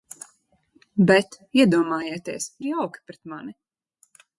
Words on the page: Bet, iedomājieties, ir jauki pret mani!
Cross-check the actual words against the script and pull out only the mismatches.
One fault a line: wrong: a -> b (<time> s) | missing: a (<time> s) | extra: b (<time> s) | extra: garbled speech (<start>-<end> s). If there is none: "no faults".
no faults